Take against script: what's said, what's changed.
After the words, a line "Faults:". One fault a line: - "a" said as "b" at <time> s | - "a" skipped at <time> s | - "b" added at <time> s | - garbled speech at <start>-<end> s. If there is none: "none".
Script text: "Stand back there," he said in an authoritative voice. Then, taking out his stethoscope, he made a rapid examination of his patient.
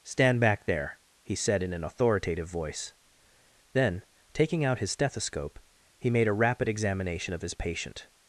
"Stand back there," he said in an authoritative voice. Then, taking out his stethoscope, he made a rapid examination of his patient.
Faults:
none